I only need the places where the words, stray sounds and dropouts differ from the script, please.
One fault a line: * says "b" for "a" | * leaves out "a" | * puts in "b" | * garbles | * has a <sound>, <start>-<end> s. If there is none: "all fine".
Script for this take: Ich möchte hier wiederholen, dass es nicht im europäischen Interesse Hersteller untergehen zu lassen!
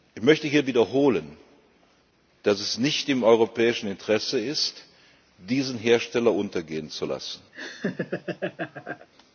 * puts in "ist diesen"
* has a laugh, 7.5-9.1 s